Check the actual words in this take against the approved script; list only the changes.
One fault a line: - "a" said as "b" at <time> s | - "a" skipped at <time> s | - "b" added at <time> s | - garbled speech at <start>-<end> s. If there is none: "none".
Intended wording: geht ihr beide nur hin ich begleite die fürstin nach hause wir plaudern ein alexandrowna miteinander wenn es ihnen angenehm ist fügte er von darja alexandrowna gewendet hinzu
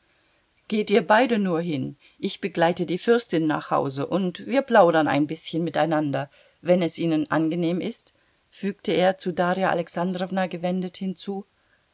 - "und" added at 4.1 s
- "alexandrowna" said as "bißchen" at 5.3 s
- "von" said as "zu" at 9.2 s